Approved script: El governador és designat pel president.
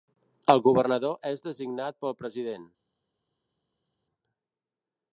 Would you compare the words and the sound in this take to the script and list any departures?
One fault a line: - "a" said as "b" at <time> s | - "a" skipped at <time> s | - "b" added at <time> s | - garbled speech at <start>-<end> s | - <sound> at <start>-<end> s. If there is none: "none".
none